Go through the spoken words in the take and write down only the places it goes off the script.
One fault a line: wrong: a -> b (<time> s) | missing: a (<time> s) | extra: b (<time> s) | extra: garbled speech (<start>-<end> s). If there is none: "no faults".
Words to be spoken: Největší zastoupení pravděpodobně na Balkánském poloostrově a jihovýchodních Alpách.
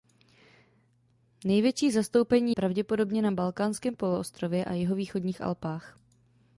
no faults